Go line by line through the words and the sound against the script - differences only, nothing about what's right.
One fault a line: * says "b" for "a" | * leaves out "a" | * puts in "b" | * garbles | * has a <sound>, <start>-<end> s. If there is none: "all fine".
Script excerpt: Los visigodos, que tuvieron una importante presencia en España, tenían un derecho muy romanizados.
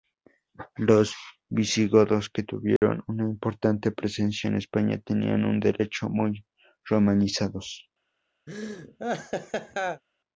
* has a dropout, 2.8-2.8 s
* has a laugh, 8.5-10.0 s